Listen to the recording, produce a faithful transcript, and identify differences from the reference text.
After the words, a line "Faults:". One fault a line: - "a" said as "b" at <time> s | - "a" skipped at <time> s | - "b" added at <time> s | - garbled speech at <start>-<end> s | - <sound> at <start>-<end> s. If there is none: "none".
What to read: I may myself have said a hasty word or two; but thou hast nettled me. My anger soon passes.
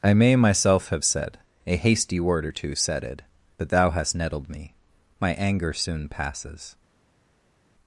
I may myself have said a hasty word or two; said it but thou hast nettled me. My anger soon passes.
Faults:
- "said it" added at 2.8 s